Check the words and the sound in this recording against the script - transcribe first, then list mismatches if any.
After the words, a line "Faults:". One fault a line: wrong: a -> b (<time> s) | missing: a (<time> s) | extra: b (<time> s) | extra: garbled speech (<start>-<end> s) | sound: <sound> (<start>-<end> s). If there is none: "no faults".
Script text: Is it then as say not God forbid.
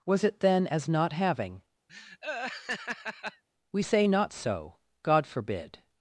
Was it then as not having? we say not so, God forbid.
Faults:
wrong: Is -> Was (0.0 s)
extra: not having we (0.9 s)
sound: laugh (1.9-3.4 s)
extra: so (4.3 s)